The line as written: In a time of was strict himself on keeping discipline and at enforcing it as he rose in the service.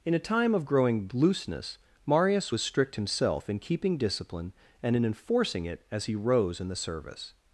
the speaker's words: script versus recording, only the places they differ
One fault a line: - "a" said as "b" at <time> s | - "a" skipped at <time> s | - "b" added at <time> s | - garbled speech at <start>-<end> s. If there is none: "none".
- "growing looseness Marius" added at 0.7 s
- "on" said as "in" at 3.5 s
- "at" said as "in" at 4.9 s